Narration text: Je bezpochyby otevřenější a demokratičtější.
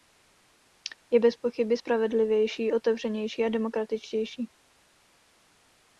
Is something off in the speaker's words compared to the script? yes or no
yes